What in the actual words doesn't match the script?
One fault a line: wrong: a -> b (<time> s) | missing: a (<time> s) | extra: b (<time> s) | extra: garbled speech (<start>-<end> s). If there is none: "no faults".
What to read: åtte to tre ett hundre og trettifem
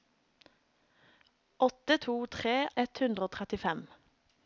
no faults